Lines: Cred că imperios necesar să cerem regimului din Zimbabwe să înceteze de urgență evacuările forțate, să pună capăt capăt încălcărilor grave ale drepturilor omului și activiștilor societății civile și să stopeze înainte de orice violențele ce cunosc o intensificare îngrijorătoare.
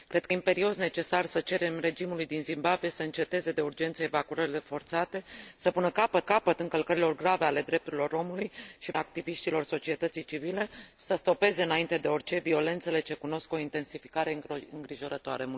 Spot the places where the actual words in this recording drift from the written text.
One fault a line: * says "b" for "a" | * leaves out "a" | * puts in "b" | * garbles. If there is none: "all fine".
all fine